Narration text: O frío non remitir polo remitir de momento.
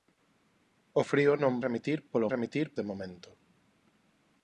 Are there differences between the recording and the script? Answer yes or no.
no